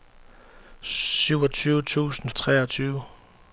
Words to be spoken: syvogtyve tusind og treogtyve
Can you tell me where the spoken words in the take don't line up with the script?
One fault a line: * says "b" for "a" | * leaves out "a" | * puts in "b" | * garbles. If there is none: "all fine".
all fine